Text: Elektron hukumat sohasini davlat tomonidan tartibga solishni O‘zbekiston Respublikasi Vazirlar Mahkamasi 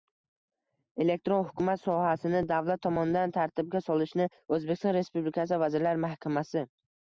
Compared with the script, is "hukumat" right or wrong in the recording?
right